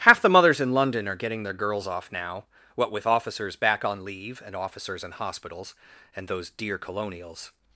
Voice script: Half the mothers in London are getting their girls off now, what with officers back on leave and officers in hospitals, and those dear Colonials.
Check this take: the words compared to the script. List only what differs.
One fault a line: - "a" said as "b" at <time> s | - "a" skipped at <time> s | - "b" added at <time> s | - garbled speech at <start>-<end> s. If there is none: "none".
none